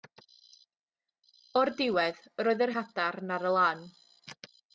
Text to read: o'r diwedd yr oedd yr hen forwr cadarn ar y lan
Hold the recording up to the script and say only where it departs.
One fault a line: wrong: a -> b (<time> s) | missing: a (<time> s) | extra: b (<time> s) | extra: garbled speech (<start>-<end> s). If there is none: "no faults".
missing: hen forwr (2.7 s)